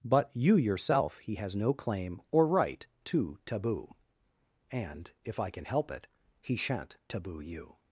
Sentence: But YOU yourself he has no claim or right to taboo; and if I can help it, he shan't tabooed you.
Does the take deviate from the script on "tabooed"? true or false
true